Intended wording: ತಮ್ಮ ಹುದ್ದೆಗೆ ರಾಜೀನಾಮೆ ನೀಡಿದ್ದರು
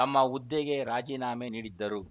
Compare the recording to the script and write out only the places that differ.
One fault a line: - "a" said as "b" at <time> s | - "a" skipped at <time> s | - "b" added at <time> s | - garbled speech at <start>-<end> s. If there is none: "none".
none